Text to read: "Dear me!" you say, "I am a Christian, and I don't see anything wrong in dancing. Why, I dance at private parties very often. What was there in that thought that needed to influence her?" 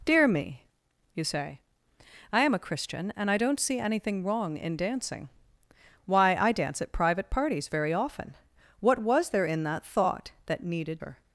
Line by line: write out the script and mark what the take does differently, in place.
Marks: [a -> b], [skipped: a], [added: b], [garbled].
"Dear me!" you say, "I am a Christian, and I don't see anything wrong in dancing. Why, I dance at private parties very often. What was there in that thought that needed [skipped: to influence] her?"